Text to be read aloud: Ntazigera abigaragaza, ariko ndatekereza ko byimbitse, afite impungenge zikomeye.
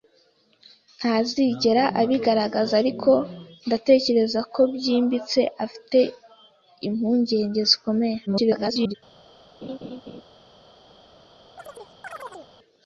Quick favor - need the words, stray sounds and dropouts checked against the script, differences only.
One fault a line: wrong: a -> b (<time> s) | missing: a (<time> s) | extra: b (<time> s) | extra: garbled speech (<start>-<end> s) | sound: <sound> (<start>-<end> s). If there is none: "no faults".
extra: garbled speech (8.3-8.9 s)
sound: laugh (9.6-10.2 s)
sound: chirp (11.6-12.5 s)